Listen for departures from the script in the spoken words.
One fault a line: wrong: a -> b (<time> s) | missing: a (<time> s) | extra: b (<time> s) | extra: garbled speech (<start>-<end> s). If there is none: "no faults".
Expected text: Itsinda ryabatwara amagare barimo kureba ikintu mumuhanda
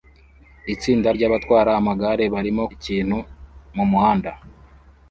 missing: kureba (2.6 s)